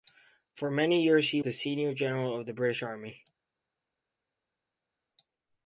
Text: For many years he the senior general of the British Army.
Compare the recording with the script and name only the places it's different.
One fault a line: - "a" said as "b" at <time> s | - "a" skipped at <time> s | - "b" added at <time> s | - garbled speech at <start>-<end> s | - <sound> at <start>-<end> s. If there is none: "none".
none